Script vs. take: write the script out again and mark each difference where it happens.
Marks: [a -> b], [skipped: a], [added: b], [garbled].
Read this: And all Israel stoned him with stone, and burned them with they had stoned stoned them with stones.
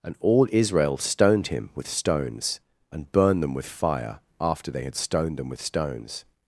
And all Israel stoned him with [stone, -> stones] and burned them with [added: fire after] they had stoned [skipped: stoned] them with stones.